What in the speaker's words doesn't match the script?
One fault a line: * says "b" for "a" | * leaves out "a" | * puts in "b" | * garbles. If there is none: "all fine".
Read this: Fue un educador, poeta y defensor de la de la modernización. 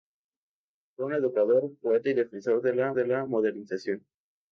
all fine